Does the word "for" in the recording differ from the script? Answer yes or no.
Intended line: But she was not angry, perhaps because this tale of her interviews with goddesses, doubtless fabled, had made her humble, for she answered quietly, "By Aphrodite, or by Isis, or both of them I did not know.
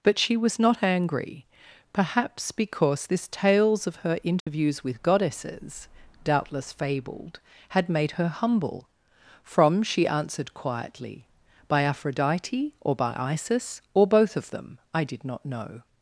yes